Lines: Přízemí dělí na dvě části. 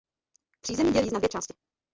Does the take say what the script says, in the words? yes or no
yes